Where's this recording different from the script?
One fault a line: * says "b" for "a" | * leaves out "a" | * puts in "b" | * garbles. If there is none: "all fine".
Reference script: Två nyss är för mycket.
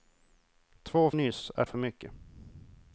all fine